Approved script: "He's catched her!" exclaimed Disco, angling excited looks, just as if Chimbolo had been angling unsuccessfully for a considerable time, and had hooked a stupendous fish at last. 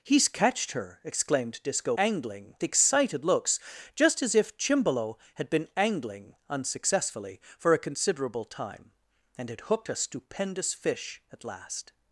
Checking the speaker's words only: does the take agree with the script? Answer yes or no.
yes